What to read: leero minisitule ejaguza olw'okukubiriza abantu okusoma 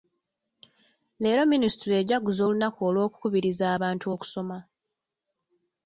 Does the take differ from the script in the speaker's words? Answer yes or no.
yes